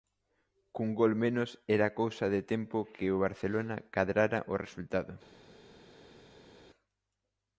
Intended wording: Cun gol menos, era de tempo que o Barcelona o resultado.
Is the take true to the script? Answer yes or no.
no